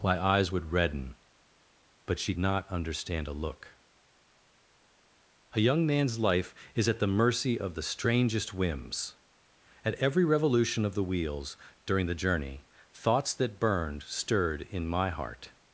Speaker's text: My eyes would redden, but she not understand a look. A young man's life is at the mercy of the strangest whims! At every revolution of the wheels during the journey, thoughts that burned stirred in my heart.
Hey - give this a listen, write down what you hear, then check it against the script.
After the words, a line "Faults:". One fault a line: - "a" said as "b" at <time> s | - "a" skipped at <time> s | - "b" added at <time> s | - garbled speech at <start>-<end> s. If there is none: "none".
My eyes would redden, but she not understand a look. A young man's life is at the mercy of the strangest whims! At every revolution of the wheels during the journey, thoughts that burned stirred in my heart.
Faults:
none